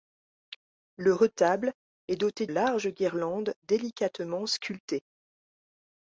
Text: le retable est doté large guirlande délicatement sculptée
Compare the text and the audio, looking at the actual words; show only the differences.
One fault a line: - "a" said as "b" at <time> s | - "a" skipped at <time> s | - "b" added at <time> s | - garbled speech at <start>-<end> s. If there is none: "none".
none